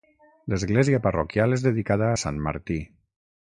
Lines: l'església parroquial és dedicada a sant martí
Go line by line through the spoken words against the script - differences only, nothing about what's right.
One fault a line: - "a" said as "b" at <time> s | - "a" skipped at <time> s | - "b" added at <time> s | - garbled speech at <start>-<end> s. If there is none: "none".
none